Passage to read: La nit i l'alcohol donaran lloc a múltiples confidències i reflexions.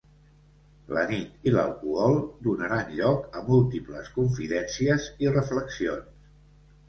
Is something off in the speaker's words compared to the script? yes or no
no